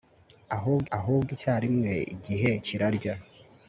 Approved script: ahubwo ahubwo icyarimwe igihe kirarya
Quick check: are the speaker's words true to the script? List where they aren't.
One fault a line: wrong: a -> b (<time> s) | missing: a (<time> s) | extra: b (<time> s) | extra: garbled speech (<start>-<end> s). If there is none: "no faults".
no faults